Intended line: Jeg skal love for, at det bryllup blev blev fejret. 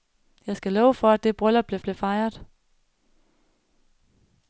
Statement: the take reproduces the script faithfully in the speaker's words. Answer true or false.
true